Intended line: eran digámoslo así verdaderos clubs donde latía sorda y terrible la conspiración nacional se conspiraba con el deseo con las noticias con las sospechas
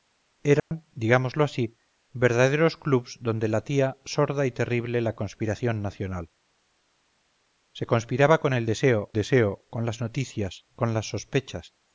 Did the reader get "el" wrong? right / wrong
right